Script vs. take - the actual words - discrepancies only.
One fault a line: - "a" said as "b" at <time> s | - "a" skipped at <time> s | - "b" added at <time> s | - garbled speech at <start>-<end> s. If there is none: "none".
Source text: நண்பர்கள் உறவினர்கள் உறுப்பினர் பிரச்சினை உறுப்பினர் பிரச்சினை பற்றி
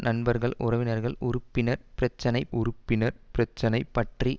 none